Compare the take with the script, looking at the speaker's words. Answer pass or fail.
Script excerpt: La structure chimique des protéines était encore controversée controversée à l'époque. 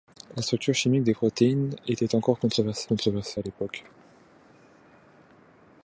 pass